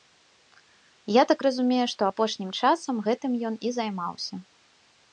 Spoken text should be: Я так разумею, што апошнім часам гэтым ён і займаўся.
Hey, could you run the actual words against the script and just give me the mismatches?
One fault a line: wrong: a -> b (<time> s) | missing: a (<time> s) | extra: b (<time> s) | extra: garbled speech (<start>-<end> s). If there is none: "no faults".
no faults